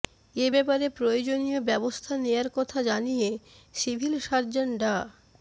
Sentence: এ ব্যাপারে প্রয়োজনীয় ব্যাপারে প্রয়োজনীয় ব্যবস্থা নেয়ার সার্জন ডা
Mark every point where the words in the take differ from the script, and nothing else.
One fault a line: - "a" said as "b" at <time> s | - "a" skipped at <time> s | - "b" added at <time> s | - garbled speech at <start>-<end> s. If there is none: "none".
- "ব্যাপারে প্রয়োজনীয় ব্যবস্থা নেয়ার" said as "ব্যবস্থা নেয়ার কথা জানিয়ে সিভিল" at 1.7 s